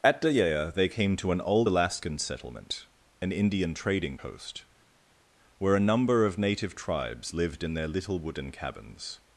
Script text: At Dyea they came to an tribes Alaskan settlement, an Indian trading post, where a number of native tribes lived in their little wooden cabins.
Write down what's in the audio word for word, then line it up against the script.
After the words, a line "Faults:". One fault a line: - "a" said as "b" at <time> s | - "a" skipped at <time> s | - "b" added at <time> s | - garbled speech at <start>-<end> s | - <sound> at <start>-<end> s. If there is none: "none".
At Dyea they came to an old Alaskan settlement, an Indian trading post, where a number of native tribes lived in their little wooden cabins.
Faults:
- "tribes" said as "old" at 1.4 s